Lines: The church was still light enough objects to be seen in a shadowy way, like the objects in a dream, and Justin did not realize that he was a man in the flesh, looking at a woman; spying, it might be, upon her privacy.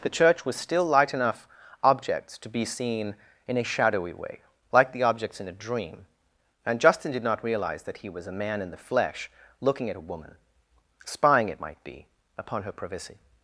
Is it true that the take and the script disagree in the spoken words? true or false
false